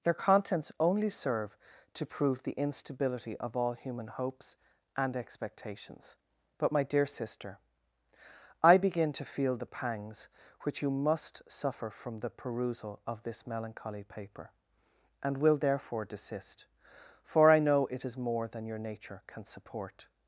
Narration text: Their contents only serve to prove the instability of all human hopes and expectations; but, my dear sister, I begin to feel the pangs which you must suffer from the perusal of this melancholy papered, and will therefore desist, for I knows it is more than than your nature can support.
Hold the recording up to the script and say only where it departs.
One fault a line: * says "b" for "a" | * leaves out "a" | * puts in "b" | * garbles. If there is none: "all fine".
* says "paper" for "papered"
* says "know" for "knows"
* leaves out "than"